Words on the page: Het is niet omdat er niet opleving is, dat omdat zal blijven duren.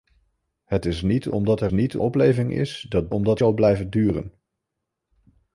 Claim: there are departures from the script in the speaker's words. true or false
false